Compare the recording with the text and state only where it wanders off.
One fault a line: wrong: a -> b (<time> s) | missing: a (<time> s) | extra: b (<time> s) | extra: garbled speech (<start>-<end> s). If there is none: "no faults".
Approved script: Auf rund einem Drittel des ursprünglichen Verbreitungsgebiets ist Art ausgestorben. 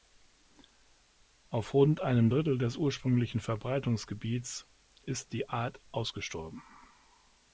extra: die (5.3 s)